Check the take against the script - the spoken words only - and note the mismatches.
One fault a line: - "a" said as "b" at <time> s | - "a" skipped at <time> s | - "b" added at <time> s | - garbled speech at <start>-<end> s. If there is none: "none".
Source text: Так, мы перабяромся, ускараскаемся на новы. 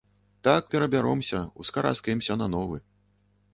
- "мы" skipped at 0.7 s